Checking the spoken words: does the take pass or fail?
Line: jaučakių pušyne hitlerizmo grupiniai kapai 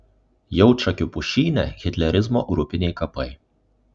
pass